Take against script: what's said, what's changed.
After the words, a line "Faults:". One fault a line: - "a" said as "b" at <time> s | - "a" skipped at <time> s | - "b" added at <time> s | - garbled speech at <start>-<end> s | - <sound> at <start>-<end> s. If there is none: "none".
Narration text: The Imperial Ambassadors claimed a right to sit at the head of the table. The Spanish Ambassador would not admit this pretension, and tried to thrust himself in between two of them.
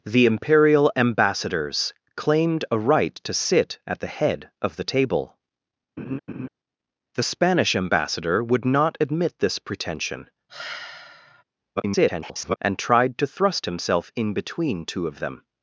The Imperial Ambassadors claimed a right to sit at the head of the table. The Spanish Ambassador would not admit this pretension, [garbled] and tried to thrust himself in between two of them.
Faults:
- laugh at 6.0-6.5 s
- sigh at 10.5-11.4 s
- garbled speech at 11.8-12.6 s